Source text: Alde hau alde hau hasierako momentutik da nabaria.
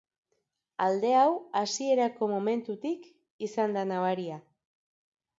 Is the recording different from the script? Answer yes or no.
yes